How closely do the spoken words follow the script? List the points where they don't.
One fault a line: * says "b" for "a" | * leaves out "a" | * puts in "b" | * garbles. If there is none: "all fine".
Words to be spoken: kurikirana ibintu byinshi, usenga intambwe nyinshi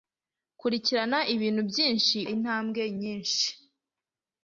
* leaves out "usenga"